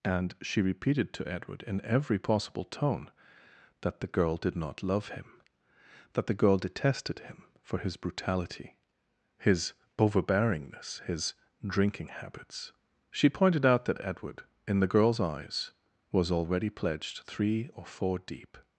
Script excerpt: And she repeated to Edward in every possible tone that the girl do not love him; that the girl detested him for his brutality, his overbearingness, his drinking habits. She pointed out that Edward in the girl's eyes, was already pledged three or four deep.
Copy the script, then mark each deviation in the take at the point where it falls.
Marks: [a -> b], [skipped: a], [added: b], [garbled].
And she repeated to Edward in every possible tone that the girl [do -> did] not love him; that the girl detested him for his brutality, his overbearingness, his drinking habits. She pointed out that Edward in the girl's eyes, was already pledged three or four deep.